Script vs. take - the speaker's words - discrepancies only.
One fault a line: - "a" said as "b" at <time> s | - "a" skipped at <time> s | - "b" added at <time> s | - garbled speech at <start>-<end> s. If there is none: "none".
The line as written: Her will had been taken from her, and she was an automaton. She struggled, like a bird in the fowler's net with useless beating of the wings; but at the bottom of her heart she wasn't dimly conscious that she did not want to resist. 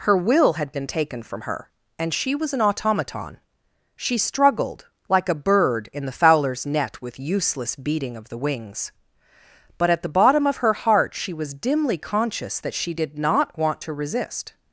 - "wasn't" said as "was" at 11.3 s